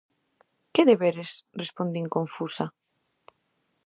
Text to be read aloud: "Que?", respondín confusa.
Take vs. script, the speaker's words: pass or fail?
fail